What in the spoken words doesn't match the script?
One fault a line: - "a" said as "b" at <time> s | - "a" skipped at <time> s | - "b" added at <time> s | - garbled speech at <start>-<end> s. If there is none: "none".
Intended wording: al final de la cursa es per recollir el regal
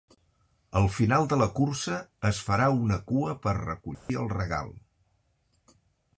- "farà una cua" added at 2.5 s